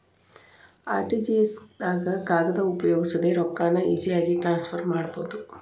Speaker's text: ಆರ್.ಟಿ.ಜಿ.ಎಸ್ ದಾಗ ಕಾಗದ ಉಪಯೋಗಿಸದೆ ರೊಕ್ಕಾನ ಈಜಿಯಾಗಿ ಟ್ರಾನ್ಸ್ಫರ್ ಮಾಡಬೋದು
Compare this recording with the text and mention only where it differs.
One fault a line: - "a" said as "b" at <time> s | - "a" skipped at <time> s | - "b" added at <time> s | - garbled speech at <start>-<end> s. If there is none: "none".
none